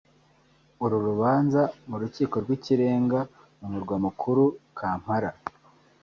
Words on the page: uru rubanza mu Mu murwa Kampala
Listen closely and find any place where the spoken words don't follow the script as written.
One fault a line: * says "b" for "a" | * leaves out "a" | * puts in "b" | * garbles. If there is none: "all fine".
* puts in "Rukiko rw'Ikirenga"
* puts in "mukuru"